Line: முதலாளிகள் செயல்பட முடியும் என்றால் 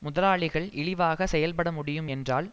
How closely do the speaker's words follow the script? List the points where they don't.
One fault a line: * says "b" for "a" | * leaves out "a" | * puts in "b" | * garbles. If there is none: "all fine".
* puts in "இழிவாக"